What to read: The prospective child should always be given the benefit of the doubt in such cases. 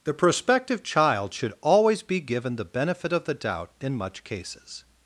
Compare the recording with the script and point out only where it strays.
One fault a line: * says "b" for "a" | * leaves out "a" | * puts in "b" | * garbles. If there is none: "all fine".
* says "much" for "such"